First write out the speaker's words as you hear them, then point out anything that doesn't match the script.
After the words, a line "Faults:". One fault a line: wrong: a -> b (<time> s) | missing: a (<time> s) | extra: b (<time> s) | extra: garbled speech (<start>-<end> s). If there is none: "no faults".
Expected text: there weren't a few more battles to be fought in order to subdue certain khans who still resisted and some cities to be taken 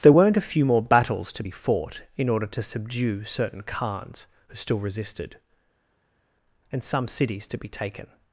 there weren't a few more battles to be fought in order to subdue certain khans who still resisted and some cities to be taken
Faults:
no faults